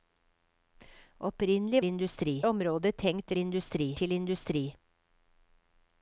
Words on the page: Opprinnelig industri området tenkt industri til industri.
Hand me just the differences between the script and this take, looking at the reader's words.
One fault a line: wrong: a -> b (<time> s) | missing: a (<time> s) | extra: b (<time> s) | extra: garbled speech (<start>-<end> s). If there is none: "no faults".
no faults